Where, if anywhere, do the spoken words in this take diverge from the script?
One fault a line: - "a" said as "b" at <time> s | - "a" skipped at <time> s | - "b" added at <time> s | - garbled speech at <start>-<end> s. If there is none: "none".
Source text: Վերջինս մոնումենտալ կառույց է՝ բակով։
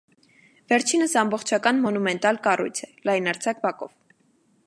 - "ամբողջական" added at 1.2 s
- "լայնարձակ" added at 3.1 s